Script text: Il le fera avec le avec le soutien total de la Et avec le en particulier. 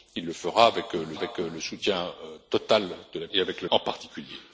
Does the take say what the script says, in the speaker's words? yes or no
yes